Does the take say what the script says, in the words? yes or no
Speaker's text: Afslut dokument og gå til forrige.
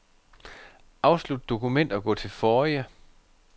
yes